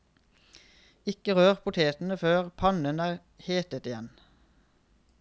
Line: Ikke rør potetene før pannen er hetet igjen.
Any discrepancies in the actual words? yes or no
no